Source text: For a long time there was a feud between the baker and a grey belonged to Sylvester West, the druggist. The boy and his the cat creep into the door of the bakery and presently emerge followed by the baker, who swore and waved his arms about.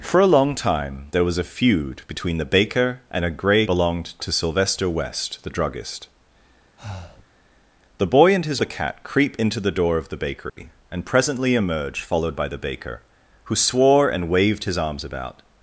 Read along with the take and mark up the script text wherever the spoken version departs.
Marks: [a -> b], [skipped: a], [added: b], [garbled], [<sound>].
For a long time there was a feud between the baker and a grey belonged to Sylvester West, the druggist. [breath] The boy and his the cat creep into the door of the bakery [dropout] and presently emerge followed by the baker, who swore and waved his arms about.